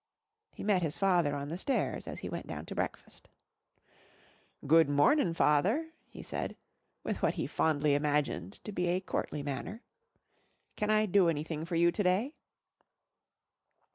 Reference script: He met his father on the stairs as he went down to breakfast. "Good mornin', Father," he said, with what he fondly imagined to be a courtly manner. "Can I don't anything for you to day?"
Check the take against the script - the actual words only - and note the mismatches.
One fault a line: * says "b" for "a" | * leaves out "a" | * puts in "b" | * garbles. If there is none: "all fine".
* says "do" for "don't"